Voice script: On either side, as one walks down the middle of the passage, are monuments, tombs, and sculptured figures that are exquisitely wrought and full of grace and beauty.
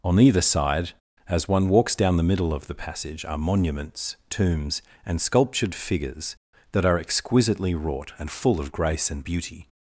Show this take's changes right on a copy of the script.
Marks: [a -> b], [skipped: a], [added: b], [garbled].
On either side, as one walks down the middle of the passage, are monuments, tombs, and sculptured figures that are exquisitely wrought and full of grace and beauty.